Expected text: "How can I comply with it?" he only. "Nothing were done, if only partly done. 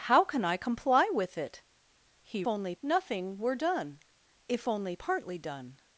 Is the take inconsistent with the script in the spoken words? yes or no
no